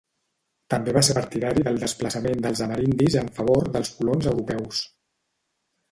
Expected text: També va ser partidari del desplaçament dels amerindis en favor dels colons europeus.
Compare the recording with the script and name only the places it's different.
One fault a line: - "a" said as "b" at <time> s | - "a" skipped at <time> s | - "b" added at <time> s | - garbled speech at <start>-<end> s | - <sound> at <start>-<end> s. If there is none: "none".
none